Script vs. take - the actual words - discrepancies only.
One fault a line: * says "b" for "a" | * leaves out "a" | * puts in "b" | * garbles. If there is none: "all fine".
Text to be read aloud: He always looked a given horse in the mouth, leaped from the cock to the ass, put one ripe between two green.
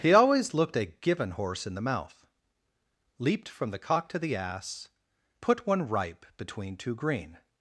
all fine